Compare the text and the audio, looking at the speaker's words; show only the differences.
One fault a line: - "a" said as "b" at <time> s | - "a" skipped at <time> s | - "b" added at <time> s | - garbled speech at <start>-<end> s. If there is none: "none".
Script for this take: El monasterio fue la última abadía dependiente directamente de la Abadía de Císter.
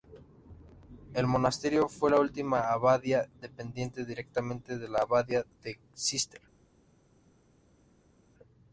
none